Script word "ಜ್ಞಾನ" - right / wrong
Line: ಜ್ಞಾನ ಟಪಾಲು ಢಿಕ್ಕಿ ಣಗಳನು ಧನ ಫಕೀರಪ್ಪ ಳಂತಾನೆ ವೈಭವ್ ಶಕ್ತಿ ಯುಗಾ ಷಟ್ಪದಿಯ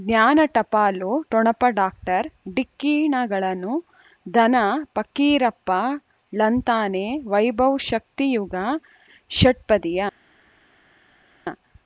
right